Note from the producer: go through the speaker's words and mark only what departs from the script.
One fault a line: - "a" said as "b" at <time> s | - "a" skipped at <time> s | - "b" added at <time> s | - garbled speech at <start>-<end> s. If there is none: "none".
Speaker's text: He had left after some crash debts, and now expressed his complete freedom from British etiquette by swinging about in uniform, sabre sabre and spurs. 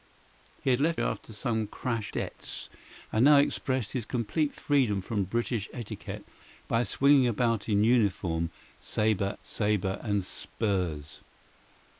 none